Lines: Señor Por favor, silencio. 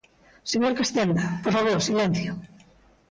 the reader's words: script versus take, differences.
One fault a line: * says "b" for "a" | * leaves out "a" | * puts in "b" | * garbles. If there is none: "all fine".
* puts in "Castenda"